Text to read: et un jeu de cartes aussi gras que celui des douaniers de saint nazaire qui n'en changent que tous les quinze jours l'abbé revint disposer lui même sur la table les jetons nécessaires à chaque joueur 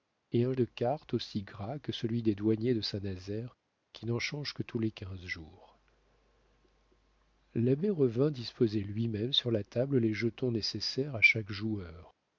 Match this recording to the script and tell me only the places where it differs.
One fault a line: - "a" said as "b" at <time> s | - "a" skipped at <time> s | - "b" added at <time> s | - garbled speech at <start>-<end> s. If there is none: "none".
- "jeu" skipped at 0.5 s